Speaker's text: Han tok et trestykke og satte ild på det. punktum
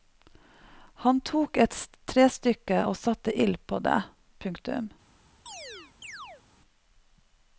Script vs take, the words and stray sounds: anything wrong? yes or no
yes